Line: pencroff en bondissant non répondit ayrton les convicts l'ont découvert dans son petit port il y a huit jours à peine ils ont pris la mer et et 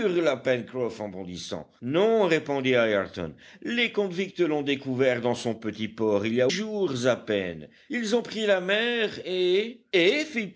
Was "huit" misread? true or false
true